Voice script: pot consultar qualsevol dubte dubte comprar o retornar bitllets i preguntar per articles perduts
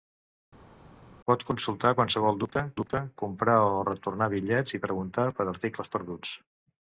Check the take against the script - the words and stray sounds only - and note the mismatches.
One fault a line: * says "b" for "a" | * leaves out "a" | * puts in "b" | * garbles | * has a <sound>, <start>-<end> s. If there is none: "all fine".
all fine